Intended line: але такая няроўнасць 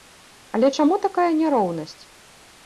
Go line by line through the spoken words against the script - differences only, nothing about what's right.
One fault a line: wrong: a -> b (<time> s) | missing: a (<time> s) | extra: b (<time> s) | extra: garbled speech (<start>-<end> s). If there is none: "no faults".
extra: чаму (0.8 s)